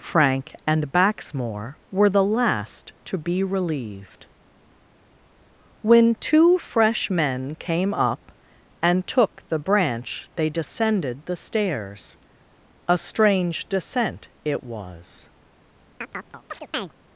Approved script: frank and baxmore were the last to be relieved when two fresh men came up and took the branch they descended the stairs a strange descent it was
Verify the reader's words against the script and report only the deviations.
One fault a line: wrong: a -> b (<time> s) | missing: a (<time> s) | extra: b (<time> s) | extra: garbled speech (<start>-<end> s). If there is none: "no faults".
no faults